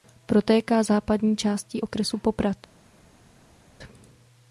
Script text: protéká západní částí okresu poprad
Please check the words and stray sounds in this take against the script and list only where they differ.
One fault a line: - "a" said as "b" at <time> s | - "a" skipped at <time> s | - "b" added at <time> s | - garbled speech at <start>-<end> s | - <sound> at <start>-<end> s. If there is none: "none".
none